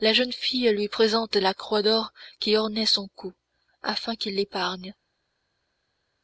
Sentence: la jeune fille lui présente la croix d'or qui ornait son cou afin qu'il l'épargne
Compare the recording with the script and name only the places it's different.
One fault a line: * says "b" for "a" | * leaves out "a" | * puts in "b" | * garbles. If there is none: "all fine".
all fine